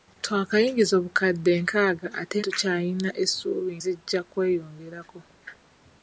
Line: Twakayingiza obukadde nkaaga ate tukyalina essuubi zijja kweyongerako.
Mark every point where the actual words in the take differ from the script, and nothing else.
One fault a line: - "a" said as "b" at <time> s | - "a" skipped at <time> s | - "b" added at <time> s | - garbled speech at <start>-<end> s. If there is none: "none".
none